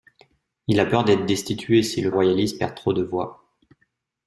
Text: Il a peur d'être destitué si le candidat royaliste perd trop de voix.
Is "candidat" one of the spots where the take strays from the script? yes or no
yes